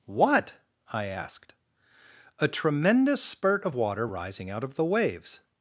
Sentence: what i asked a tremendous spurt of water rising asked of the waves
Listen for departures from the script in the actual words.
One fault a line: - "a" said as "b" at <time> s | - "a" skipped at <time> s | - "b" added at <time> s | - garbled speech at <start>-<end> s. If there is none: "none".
- "asked" said as "out" at 4.5 s